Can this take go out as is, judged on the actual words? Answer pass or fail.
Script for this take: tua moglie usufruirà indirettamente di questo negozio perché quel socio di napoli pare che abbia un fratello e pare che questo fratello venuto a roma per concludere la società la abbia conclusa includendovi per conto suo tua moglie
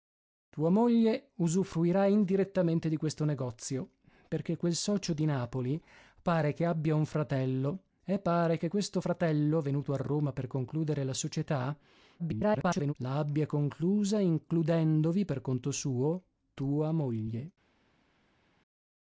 fail